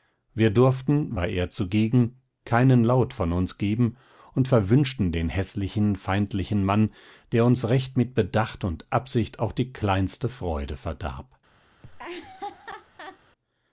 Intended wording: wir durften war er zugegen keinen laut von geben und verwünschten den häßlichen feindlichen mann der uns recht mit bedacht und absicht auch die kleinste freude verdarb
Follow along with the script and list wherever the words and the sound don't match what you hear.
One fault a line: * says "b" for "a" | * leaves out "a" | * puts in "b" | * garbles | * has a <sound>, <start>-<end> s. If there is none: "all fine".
* puts in "uns"
* has a laugh, 11.8-13.2 s